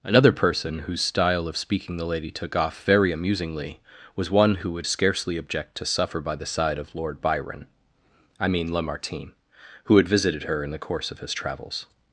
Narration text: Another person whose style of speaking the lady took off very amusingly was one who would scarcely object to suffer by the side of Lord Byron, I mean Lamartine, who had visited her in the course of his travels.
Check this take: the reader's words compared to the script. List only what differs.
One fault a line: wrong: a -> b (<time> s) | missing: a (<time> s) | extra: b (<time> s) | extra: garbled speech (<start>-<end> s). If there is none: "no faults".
no faults